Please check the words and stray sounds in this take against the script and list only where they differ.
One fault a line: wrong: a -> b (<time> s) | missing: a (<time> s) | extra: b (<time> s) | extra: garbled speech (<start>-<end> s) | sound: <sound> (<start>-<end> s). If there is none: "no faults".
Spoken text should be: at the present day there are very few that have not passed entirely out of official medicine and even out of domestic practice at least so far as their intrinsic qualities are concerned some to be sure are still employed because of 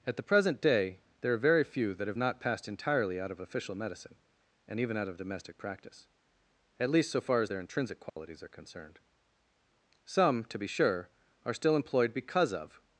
sound: dropout (8.1-8.2 s)